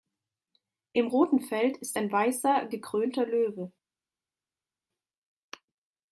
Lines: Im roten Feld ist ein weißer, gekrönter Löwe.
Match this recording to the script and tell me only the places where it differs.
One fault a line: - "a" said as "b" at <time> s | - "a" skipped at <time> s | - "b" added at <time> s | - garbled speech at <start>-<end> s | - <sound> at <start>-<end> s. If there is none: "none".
none